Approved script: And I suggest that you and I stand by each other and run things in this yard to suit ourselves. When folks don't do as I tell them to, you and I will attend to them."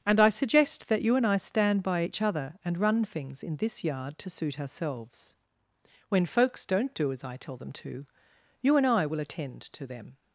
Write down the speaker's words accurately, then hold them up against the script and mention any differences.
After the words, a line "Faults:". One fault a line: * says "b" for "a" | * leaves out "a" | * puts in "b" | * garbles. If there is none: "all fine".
And I suggest that you and I stand by each other and run things in this yard to suit ourselves. When folks don't do as I tell them to, you and I will attend to them."
Faults:
all fine